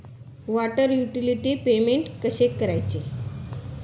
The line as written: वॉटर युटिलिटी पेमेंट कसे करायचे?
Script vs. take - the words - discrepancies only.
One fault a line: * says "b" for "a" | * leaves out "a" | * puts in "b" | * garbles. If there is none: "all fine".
all fine